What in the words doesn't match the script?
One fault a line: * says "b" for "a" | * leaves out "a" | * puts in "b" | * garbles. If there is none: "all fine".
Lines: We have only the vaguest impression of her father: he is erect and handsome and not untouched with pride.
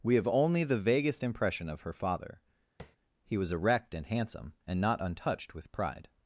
* says "was" for "is"